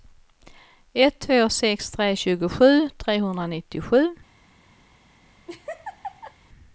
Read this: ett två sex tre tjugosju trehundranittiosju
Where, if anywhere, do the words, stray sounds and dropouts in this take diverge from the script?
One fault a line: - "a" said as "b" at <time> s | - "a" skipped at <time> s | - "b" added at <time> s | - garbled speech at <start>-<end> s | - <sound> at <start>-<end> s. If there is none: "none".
- laugh at 5.5-6.3 s